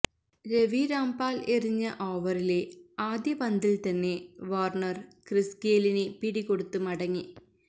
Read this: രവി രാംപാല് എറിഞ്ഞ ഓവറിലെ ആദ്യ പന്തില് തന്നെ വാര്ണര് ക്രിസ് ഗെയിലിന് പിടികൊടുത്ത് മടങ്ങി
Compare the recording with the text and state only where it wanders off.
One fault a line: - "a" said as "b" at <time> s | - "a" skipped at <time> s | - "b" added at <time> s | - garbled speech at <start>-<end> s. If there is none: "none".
none